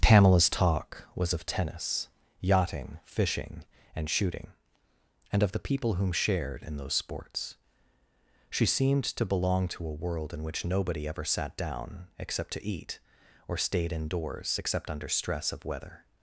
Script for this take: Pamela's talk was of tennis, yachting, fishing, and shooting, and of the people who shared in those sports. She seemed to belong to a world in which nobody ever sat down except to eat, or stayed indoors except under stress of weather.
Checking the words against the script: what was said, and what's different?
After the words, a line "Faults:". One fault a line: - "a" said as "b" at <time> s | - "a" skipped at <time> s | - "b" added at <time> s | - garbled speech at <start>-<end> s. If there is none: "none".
Pamela's talk was of tennis, yachting, fishing, and shooting, and of the people whom shared in those sports. She seemed to belong to a world in which nobody ever sat down except to eat, or stayed indoors except under stress of weather.
Faults:
- "who" said as "whom" at 5.9 s